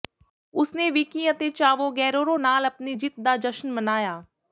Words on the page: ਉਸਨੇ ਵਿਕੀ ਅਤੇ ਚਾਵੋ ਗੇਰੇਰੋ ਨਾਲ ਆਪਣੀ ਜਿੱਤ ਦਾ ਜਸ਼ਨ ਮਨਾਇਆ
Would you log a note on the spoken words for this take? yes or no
no